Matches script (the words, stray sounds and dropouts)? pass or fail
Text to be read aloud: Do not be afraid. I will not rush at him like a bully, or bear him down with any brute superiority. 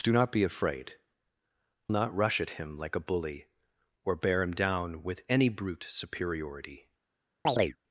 fail